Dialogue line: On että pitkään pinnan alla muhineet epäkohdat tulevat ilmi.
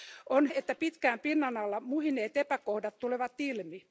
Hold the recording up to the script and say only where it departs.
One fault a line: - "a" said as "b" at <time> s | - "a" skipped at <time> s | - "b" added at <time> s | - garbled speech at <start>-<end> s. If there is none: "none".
none